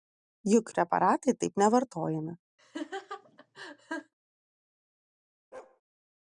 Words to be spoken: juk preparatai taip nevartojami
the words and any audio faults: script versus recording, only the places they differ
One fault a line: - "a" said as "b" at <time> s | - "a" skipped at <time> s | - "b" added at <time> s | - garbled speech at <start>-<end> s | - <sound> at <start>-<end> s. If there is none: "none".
- laugh at 2.6-4.1 s
- bark at 5.5-5.8 s